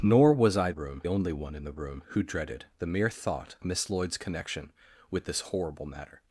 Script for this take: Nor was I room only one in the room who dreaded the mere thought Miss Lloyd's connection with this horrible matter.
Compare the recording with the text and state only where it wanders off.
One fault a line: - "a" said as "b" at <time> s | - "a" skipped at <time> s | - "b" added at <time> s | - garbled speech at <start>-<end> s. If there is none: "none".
none